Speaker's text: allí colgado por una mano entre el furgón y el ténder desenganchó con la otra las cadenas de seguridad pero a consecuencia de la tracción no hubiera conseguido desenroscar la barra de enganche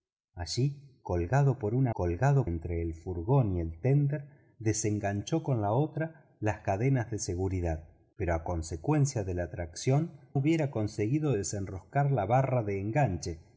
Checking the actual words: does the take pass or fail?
fail